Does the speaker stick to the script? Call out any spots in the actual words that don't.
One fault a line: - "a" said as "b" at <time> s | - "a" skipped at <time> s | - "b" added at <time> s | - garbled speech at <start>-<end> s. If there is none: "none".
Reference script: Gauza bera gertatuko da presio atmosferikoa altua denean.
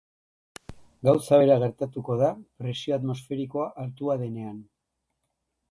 none